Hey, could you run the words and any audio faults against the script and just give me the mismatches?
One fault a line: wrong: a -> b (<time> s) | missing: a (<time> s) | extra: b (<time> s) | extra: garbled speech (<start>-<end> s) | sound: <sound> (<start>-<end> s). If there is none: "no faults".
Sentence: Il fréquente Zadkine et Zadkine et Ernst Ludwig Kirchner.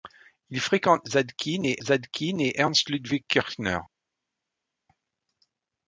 no faults